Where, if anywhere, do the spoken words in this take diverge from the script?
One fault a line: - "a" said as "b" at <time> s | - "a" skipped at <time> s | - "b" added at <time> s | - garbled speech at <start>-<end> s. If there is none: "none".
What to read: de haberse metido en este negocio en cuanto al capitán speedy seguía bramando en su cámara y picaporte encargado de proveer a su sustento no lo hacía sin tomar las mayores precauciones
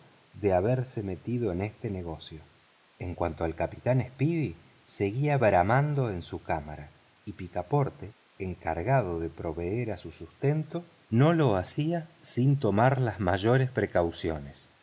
none